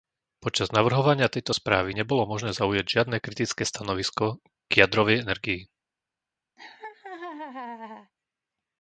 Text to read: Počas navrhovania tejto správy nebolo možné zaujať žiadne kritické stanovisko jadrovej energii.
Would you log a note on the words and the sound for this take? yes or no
yes